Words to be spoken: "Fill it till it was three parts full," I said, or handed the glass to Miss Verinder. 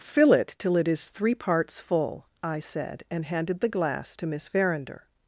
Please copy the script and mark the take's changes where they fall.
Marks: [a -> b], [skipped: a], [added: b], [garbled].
"Fill it till it [was -> is] three parts full," I said, [or -> and] handed the glass to Miss Verinder.